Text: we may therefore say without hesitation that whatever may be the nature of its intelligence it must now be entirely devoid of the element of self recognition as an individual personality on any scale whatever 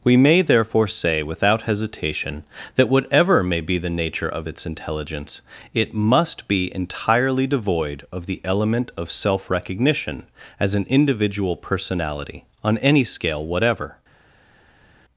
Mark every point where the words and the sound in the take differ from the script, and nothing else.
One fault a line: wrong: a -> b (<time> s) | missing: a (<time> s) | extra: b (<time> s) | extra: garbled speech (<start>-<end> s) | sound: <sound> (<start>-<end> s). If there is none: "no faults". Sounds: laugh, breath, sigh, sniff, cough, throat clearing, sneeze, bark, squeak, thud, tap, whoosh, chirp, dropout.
missing: now (6.5 s)